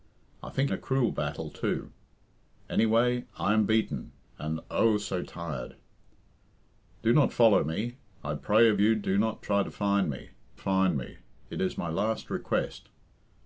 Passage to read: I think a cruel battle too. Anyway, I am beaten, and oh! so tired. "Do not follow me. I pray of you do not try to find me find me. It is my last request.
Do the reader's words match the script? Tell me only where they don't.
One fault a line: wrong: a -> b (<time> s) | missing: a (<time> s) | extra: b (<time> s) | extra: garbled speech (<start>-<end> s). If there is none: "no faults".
no faults